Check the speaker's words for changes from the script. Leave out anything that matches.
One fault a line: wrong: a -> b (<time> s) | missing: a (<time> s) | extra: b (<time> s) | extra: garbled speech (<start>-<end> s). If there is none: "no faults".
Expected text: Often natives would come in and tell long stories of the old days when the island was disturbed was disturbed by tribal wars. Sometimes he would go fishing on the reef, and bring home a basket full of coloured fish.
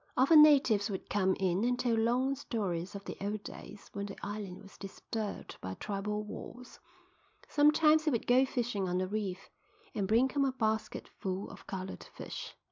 missing: was disturbed (5.6 s)